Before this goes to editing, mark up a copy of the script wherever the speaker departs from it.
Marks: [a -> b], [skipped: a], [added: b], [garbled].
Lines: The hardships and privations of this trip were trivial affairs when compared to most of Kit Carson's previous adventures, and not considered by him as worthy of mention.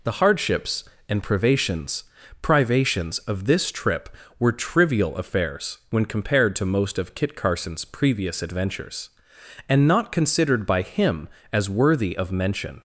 The hardships and privations [added: privations] of this trip were trivial affairs when compared to most of Kit Carson's previous adventures, and not considered by him as worthy of mention.